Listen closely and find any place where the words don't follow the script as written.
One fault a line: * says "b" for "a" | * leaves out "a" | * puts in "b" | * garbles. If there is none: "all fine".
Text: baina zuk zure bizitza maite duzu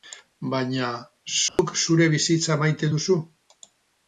all fine